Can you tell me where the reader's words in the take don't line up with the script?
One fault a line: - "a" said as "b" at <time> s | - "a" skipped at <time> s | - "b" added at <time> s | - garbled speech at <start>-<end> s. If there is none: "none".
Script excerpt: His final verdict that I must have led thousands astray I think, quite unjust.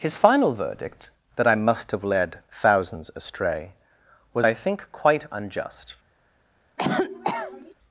- "was" added at 4.3 s